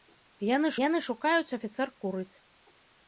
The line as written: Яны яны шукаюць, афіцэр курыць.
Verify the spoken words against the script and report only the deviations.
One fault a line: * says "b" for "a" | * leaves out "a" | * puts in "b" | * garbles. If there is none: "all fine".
all fine